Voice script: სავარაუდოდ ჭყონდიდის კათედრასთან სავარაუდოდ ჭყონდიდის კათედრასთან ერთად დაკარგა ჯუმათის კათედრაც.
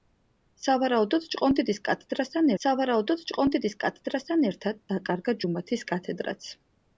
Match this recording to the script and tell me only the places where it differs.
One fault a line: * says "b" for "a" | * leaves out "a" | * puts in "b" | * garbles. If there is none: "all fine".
all fine